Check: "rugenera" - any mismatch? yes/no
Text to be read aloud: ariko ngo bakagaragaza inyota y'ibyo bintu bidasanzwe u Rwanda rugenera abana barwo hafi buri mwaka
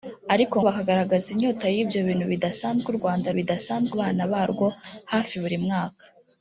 yes